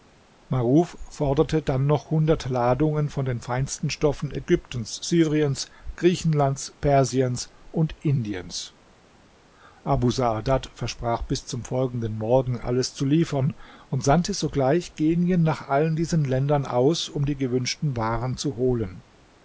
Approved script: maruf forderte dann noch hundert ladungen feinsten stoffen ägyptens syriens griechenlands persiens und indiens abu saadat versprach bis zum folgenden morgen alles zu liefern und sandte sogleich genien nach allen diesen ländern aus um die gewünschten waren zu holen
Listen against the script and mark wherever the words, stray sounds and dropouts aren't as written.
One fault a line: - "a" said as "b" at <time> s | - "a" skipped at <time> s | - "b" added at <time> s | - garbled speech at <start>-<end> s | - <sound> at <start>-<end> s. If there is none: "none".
- "von den" added at 3.1 s